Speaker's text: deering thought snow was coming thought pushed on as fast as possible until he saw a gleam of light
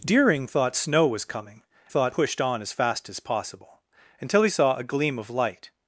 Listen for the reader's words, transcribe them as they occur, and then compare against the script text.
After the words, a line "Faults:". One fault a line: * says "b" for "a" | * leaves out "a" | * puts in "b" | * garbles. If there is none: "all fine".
deering thought snow was coming thought pushed on as fast as possible until he saw a gleam of light
Faults:
all fine